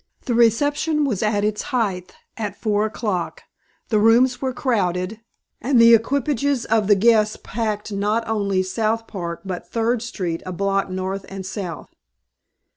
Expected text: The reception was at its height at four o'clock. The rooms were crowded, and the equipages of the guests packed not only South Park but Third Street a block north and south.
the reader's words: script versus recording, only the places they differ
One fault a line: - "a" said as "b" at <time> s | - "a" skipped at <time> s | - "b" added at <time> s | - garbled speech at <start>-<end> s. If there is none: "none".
none